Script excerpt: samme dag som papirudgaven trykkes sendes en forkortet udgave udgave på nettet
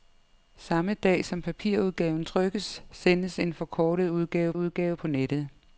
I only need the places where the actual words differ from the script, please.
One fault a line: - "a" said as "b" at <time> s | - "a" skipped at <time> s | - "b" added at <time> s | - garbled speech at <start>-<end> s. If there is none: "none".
none